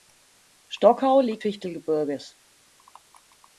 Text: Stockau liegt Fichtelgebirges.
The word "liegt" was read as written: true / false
true